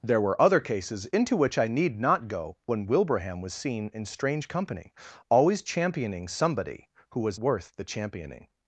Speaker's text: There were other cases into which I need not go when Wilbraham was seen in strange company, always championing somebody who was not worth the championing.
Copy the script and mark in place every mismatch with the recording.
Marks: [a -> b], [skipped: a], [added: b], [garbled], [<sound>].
There were other cases into which I need not go when Wilbraham was seen in strange company, always championing somebody who was [skipped: not] worth the championing.